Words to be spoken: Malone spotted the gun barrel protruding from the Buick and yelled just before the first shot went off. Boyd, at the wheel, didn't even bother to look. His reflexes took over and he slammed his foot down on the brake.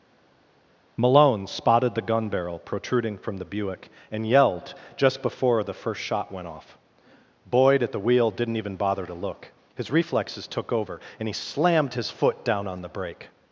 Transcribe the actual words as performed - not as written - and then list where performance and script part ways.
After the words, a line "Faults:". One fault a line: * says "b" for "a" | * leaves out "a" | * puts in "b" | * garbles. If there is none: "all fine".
Malone spotted the gun barrel protruding from the Buick and yelled just before the first shot went off. Boyd, at the wheel, didn't even bother to look. His reflexes took over and he slammed his foot down on the brake.
Faults:
all fine